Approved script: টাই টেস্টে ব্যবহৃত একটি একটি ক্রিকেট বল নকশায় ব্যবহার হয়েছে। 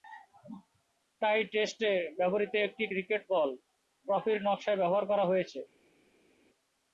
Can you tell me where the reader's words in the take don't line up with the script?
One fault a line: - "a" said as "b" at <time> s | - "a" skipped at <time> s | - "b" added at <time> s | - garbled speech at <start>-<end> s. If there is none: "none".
- "একটি" skipped at 2.8 s
- "ট্রফির" added at 4.0 s
- "করা" added at 5.1 s